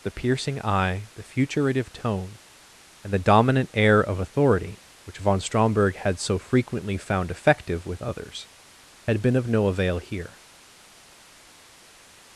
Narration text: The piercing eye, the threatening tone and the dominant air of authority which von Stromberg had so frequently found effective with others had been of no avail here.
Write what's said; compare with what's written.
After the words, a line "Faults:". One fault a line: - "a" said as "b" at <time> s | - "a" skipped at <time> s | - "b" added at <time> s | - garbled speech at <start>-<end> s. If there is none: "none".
The piercing eye, the futuritive tone and the dominant air of authority which von Stromberg had so frequently found effective with others had been of no avail here.
Faults:
- "threatening" said as "futuritive" at 1.2 s